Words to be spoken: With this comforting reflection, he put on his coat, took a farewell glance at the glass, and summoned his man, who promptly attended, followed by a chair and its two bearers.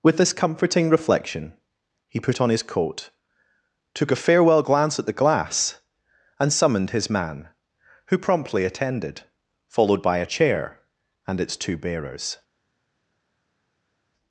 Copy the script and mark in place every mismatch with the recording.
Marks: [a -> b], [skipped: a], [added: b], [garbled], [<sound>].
With this comforting reflection, he put on his coat, took a farewell glance at the glass, and summoned his man, who promptly attended, followed by a chair and its two bearers.